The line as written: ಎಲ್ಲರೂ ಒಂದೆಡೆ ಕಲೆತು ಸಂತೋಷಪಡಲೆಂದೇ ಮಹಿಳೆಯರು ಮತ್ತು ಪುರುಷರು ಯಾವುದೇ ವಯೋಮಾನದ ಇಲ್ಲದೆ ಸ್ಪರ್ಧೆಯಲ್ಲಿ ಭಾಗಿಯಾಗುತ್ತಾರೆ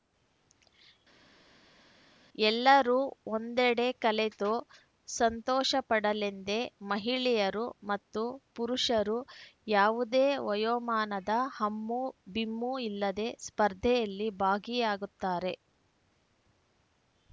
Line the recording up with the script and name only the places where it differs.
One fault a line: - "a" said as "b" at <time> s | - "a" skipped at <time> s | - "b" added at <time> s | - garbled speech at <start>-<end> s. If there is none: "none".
- "ಹಮ್ಮು ಬಿಮ್ಮು" added at 11.6 s